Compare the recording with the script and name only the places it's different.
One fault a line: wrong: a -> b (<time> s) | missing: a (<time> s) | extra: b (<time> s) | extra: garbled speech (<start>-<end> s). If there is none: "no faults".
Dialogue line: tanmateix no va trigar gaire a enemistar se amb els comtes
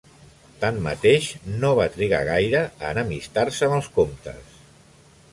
no faults